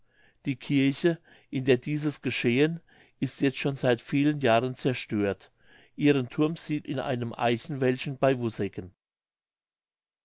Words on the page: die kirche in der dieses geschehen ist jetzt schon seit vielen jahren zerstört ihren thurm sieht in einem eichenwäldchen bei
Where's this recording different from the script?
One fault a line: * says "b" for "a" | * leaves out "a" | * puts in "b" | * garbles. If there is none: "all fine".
all fine